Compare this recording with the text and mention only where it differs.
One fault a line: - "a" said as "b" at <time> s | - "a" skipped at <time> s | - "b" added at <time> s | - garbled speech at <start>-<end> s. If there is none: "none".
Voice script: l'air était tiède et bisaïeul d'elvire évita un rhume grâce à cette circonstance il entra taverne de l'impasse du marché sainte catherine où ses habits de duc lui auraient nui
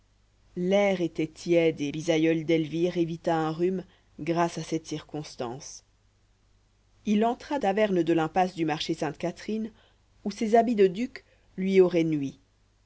none